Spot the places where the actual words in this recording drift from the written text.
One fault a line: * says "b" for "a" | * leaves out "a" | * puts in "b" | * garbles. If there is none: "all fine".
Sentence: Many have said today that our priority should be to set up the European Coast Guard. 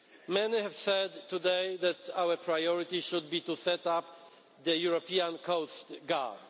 all fine